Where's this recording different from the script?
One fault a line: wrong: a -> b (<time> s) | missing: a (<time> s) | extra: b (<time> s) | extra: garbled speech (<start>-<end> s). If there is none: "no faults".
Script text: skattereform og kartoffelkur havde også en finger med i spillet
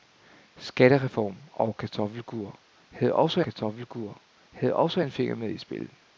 extra: kartoffelkur havde også (3.4 s)